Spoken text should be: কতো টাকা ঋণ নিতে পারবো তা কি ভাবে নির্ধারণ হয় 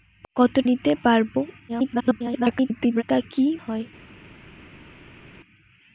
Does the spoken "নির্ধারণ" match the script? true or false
false